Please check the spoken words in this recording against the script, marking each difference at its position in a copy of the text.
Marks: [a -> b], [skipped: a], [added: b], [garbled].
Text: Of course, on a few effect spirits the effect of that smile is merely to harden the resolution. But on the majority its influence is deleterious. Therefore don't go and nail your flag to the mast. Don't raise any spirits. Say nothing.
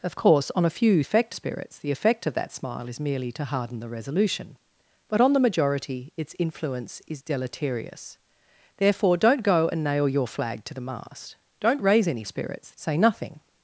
Of course, on a few effect spirits the effect of that smile is merely to harden the resolution. But on the majority its influence is deleterious. Therefore don't go and nail your flag to the mast. Don't raise any spirits. Say nothing.